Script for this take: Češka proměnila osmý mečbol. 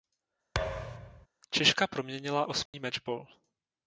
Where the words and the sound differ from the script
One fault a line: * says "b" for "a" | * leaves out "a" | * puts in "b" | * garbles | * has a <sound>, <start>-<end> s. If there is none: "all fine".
* has a thud, 0.5-1.3 s
* has a dropout, 2.7-2.7 s